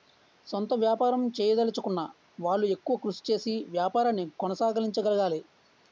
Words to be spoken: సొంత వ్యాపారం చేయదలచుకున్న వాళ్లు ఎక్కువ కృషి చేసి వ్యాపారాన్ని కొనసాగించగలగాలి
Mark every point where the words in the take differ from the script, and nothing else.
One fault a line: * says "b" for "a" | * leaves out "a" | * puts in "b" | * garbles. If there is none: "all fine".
all fine